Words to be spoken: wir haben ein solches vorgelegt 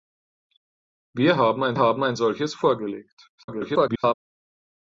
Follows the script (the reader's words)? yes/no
no